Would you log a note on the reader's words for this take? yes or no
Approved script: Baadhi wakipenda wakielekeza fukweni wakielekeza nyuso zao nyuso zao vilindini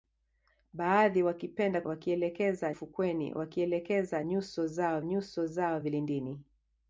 no